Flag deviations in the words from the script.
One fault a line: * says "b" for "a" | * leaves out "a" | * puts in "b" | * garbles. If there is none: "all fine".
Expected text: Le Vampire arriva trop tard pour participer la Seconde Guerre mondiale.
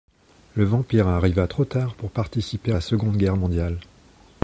all fine